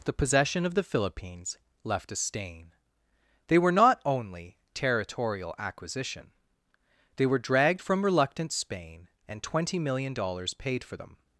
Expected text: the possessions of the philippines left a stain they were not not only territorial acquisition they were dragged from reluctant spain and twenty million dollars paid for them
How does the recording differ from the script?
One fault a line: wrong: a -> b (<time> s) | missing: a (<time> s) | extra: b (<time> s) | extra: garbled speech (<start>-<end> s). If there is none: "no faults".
wrong: possessions -> possession (0.1 s)
missing: not (4.0 s)